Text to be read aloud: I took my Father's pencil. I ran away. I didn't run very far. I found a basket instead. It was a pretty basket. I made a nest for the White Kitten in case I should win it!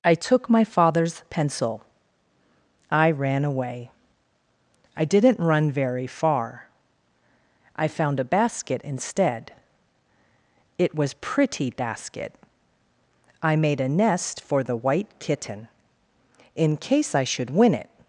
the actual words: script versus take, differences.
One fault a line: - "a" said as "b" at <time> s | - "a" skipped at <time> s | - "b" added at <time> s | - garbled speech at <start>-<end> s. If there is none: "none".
- "a" skipped at 11.1 s